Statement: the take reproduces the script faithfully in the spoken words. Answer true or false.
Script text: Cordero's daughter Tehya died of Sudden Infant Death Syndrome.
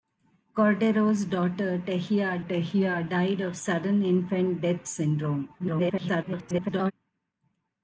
false